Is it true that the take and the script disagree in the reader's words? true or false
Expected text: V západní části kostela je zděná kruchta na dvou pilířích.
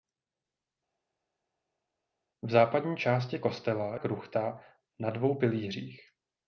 true